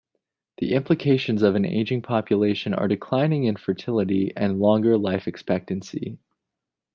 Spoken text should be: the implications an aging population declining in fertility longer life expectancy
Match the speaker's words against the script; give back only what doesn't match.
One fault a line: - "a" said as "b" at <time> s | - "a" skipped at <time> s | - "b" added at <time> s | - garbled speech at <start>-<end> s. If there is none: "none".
- "of" added at 1.4 s
- "are" added at 2.7 s
- "and" added at 4.4 s